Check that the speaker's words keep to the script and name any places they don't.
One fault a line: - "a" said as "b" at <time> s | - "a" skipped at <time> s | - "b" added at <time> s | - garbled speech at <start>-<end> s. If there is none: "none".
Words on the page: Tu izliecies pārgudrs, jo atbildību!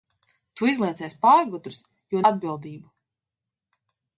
none